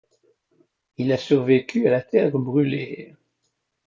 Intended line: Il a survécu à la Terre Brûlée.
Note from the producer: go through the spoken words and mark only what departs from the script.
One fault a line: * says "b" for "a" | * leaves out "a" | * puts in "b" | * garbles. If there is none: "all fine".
all fine